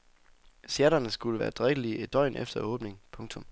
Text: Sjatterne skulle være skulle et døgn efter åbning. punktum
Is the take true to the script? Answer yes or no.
no